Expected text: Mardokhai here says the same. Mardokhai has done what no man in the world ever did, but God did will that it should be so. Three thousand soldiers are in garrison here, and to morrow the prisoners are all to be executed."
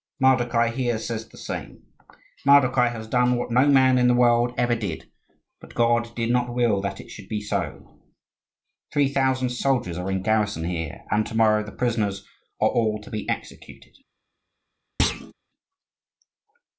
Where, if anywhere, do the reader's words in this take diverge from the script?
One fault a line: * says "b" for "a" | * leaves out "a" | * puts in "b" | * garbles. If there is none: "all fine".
* puts in "not"